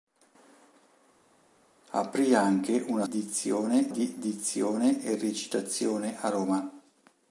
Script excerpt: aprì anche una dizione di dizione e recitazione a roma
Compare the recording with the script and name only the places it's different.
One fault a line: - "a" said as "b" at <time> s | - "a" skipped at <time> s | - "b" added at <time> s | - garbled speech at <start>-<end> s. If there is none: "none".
none